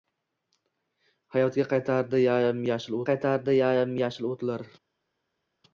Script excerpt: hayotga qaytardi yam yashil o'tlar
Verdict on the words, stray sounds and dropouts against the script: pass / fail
fail